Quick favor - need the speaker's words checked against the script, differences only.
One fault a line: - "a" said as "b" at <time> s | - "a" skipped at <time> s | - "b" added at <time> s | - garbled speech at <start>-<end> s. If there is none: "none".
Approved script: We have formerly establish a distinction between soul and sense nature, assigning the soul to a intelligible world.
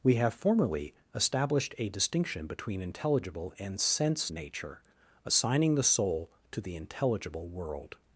- "establish" said as "established" at 1.1 s
- "soul" said as "intelligible" at 2.8 s
- "a" said as "the" at 6.6 s